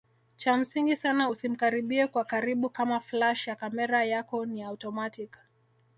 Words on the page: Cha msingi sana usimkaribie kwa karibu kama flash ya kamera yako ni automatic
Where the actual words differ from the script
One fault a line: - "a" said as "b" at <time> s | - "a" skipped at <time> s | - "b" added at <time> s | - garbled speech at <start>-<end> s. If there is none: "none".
none